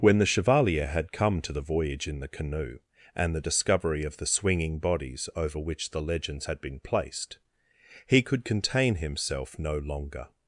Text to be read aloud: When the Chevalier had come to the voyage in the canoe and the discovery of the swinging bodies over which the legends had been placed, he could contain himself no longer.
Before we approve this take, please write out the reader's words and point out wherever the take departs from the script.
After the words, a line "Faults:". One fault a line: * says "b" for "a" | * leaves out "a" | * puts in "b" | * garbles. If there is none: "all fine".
When the Chevalier had come to the voyage in the canoe and the discovery of the swinging bodies over which the legends had been placed, he could contain himself no longer.
Faults:
all fine